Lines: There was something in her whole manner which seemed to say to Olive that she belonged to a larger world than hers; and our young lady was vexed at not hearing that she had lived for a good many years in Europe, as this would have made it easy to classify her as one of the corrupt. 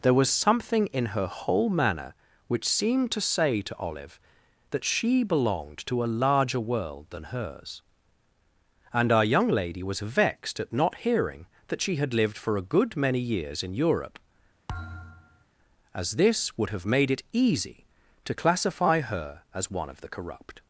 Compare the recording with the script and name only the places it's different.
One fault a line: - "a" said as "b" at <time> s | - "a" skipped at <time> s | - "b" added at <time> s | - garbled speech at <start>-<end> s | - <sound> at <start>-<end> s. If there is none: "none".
- thud at 14.7-15.4 s